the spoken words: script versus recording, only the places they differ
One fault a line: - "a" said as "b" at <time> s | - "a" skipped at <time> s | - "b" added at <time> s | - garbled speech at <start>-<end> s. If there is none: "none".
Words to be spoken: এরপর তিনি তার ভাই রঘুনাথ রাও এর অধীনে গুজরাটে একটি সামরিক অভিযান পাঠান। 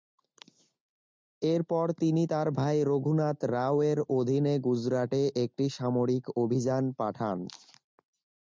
none